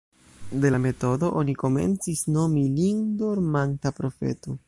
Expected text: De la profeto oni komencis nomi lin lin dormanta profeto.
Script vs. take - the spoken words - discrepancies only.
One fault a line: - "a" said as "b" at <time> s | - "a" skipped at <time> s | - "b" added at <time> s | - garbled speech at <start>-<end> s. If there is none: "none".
- "profeto" said as "metodo" at 0.8 s
- "lin" skipped at 3.0 s